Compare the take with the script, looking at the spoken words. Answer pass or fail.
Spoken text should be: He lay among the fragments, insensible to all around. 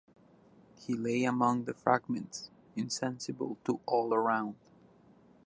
pass